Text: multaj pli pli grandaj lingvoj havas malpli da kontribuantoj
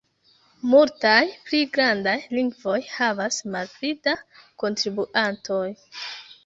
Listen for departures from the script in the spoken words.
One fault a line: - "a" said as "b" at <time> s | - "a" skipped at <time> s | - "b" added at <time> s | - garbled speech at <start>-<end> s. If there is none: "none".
- "pli" skipped at 1.6 s